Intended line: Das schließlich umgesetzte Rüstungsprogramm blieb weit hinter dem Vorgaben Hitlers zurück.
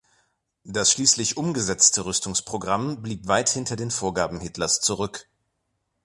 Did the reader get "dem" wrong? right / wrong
wrong